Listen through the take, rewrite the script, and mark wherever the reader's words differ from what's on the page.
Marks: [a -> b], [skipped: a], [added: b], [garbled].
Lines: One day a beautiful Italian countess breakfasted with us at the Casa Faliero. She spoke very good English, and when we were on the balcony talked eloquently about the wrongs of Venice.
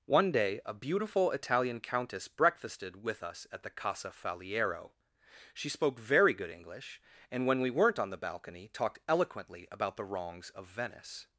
One day a beautiful Italian countess breakfasted with us at the Casa Faliero. She spoke very good English, and when we [were -> weren't] on the balcony talked eloquently about the wrongs of Venice.